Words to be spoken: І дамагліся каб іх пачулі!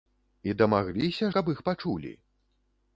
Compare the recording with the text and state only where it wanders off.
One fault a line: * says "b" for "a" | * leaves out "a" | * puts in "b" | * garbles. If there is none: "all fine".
all fine